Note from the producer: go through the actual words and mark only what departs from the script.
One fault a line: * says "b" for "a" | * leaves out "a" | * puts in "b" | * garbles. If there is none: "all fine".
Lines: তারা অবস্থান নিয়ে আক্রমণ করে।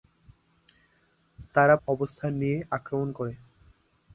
all fine